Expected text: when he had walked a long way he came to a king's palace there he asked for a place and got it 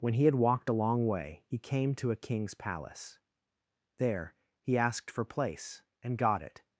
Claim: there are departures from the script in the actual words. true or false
true